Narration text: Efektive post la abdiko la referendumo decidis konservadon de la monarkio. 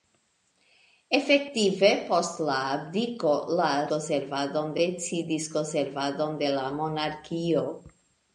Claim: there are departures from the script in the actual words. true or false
true